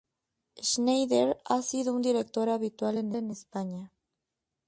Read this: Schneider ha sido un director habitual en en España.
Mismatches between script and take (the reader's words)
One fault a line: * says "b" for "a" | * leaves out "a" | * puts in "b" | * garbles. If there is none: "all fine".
all fine